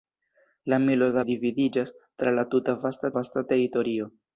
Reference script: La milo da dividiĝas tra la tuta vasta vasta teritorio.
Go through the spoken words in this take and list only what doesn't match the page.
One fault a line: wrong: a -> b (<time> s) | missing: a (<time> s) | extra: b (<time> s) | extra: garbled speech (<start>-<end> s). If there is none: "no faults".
no faults